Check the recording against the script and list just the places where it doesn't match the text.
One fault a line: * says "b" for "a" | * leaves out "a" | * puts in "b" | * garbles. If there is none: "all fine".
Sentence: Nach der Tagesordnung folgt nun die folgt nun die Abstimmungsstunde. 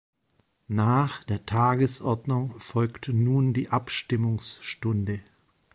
* leaves out "folgt nun die"